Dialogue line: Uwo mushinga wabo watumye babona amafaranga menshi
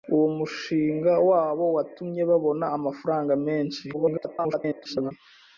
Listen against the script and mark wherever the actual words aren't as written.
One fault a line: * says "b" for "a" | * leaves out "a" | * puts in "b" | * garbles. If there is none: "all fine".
* garbles